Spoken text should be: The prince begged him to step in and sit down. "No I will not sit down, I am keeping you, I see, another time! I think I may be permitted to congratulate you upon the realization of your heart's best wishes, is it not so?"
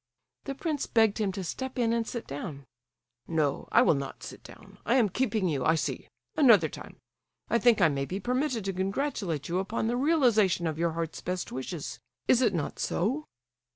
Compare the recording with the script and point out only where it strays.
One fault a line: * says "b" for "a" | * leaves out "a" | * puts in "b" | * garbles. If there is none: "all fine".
all fine